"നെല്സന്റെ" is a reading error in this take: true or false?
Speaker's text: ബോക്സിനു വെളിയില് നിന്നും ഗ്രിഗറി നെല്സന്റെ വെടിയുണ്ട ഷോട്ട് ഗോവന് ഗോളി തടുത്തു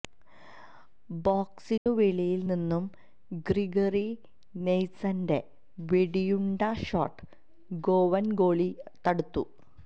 false